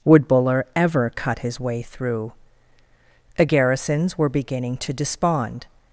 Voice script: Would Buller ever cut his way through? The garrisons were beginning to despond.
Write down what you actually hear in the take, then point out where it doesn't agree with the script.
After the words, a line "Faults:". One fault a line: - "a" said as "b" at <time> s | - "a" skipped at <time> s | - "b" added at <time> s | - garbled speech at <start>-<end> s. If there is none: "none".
Would Buller ever cut his way through? The garrisons were beginning to despond.
Faults:
none